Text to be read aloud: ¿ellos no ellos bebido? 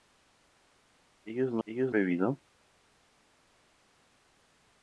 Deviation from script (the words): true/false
false